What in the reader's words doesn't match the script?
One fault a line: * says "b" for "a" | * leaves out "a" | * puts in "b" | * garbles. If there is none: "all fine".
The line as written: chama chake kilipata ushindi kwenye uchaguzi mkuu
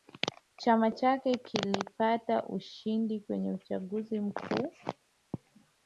all fine